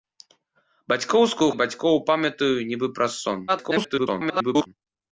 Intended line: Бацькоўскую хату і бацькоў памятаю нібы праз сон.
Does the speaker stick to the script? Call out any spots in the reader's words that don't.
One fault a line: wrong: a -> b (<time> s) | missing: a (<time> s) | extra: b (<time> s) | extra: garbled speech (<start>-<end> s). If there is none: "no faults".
missing: хату (1.5 s)
extra: garbled speech (3.5-4.7 s)